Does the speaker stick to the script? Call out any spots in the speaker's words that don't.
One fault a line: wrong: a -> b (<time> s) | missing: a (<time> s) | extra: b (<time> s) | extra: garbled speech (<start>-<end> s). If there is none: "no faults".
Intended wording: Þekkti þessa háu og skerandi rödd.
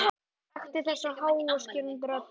no faults